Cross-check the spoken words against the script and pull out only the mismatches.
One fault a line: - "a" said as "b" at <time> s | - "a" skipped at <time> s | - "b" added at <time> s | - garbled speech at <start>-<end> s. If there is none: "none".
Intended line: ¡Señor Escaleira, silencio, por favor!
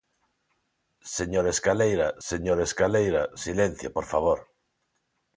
- "señor Escaleira" added at 2.3 s